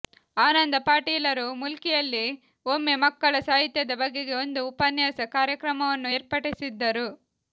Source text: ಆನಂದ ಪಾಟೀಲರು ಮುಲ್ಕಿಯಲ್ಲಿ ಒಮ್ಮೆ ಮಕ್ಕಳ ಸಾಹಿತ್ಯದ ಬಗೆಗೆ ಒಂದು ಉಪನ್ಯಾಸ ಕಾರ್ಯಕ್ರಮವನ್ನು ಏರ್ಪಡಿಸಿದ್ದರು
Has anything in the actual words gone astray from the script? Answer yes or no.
no